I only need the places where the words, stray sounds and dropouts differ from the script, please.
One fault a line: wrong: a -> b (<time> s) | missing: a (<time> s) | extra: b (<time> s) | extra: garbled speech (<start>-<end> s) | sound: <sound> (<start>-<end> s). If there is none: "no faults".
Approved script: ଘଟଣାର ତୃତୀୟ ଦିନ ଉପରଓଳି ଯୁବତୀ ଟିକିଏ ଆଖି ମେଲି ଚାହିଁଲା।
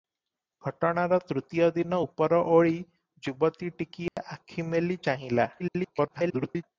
sound: dropout (4.1-4.2 s)
extra: garbled speech (5.6-6.6 s)